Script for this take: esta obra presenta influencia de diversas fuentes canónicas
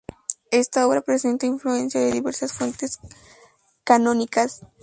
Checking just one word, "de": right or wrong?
right